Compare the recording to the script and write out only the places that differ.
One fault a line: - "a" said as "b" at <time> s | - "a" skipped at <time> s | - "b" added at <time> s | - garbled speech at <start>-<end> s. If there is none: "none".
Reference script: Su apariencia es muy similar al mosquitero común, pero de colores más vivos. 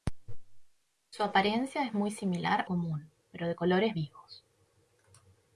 - "al mosquitero" skipped at 2.7 s
- "más" skipped at 4.0 s